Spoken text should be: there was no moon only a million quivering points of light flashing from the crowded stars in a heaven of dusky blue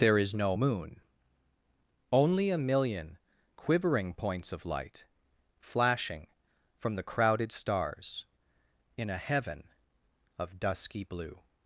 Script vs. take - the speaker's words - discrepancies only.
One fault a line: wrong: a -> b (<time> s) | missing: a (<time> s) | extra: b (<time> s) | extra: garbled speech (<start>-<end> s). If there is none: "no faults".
wrong: was -> is (0.2 s)